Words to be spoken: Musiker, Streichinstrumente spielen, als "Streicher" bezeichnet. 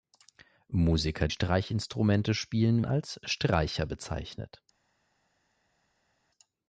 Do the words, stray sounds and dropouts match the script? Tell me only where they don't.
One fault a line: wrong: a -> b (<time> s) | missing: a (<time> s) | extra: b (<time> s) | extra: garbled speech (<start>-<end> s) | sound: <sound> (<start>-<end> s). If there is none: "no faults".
no faults